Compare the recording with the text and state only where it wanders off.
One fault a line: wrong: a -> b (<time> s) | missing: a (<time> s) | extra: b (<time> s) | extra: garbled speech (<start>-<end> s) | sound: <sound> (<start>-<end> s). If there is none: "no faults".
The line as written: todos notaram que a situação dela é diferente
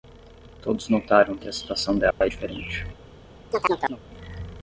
sound: dropout (2.1-2.2 s)
sound: chirp (3.5-4.0 s)